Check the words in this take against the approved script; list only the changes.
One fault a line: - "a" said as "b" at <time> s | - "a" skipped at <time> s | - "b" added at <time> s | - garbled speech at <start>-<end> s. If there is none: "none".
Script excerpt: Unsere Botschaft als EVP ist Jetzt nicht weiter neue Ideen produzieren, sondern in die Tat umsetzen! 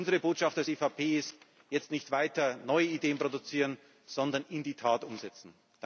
none